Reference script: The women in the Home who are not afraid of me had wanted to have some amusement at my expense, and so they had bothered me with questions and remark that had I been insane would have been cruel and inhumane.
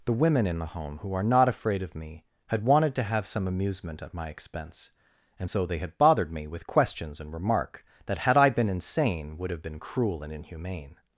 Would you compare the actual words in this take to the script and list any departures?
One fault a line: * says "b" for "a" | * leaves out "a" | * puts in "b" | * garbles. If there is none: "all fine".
all fine